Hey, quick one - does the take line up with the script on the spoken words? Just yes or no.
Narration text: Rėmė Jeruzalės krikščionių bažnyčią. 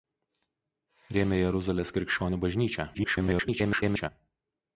no